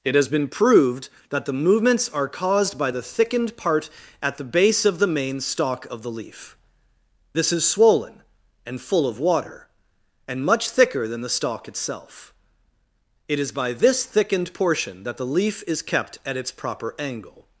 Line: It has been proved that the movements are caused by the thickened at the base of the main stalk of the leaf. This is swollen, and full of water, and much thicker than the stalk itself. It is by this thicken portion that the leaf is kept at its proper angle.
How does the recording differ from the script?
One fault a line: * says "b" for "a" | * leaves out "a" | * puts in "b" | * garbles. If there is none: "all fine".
* puts in "part"
* says "thickened" for "thicken"